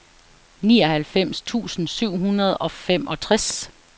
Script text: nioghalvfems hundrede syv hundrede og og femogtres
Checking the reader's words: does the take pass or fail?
fail